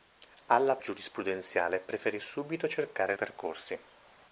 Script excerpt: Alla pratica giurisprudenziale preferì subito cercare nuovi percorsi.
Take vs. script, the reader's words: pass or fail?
fail